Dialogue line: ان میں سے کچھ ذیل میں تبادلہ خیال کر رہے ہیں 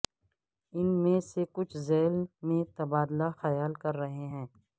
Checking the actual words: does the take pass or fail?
pass